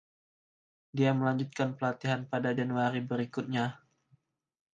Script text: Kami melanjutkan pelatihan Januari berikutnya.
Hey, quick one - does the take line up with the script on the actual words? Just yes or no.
no